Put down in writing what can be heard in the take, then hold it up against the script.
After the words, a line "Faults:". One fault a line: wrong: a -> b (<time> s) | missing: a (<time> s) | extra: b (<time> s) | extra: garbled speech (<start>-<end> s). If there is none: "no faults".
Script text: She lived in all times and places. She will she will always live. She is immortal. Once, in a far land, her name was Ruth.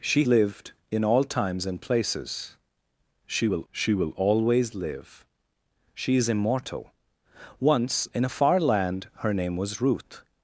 She lived in all times and places. She will she will always live. She is immortal. Once, in a far land, her name was Ruth.
Faults:
no faults